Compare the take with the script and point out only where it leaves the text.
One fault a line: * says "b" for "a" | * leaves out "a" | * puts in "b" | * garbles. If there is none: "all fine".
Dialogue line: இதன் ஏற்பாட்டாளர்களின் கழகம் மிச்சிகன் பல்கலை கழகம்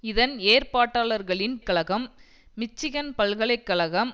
all fine